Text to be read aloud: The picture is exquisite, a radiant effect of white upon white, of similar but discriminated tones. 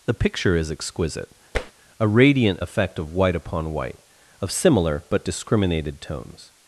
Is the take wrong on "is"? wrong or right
right